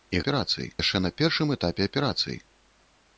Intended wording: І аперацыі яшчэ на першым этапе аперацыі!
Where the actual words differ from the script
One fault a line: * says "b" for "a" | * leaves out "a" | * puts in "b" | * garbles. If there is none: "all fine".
all fine